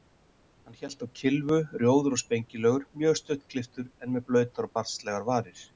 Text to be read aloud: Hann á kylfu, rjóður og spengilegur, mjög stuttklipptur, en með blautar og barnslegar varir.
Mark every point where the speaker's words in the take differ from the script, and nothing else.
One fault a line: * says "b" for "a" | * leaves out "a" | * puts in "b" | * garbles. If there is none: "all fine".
* puts in "hélt"